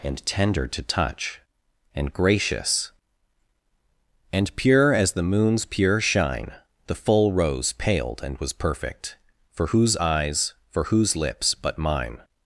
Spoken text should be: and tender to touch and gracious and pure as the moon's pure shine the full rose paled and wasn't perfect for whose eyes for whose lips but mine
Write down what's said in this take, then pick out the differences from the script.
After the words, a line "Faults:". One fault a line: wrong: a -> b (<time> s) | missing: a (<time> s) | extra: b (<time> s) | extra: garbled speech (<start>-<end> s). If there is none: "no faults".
and tender to touch and gracious and pure as the moon's pure shine the full rose paled and was perfect for whose eyes for whose lips but mine
Faults:
wrong: wasn't -> was (8.4 s)